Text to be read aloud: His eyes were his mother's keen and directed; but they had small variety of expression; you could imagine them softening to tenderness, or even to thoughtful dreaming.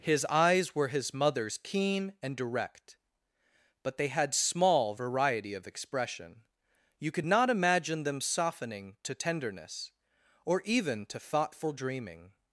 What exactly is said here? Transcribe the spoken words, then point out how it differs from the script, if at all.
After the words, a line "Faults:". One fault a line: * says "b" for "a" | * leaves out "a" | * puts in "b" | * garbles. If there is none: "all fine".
His eyes were his mother's keen and direct; but they had small variety of expression; you could not imagine them softening to tenderness, or even to thoughtful dreaming.
Faults:
* says "direct" for "directed"
* puts in "not"